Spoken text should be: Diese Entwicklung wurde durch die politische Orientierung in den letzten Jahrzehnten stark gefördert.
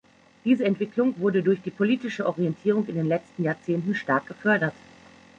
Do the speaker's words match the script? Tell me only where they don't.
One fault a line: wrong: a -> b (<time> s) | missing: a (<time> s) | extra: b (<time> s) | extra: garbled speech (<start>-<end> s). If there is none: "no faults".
no faults